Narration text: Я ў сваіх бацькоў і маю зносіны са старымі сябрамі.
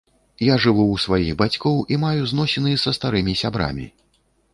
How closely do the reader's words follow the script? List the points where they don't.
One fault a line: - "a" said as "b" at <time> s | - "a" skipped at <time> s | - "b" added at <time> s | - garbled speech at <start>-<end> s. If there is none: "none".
- "жыву" added at 0.6 s